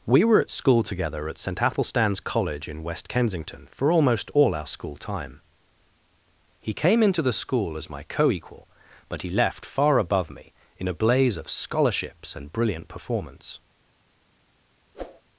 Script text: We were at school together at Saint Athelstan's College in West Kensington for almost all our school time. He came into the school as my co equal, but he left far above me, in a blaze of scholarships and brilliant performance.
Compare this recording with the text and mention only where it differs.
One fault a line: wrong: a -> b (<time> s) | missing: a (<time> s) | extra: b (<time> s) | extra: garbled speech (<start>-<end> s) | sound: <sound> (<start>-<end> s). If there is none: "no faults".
sound: whoosh (14.9-15.2 s)